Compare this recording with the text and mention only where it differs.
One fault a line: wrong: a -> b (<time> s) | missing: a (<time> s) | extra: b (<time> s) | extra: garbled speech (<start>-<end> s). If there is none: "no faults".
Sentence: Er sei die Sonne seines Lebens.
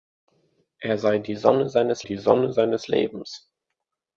extra: die Sonne seines (2.0 s)